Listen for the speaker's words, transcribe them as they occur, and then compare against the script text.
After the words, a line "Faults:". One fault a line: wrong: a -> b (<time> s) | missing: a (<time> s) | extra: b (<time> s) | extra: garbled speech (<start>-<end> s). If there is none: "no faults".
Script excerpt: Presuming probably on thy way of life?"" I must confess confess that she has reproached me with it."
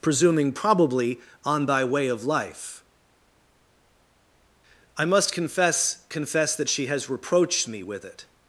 Presuming probably on thy way of life?"" I must confess confess that she has reproached me with it."
Faults:
no faults